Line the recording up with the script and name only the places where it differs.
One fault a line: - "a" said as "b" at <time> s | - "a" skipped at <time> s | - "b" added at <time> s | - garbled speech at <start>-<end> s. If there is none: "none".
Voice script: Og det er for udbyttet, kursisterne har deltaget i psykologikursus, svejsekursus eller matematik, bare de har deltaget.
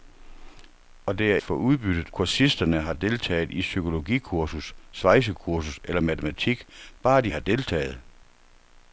none